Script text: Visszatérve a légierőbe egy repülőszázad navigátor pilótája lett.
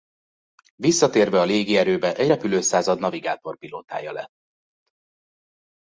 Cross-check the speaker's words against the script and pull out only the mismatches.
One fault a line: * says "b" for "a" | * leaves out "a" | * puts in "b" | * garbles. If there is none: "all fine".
all fine